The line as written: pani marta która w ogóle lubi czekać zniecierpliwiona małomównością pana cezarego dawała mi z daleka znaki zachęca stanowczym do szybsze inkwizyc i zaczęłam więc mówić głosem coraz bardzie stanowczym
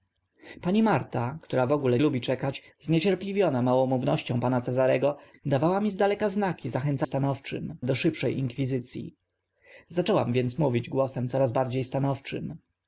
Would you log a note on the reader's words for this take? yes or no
no